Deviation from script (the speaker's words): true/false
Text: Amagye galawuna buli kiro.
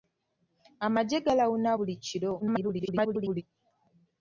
true